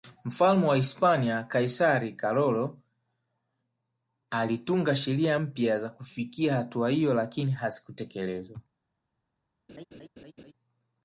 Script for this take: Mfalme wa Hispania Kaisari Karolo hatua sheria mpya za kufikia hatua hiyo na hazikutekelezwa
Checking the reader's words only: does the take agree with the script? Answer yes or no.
no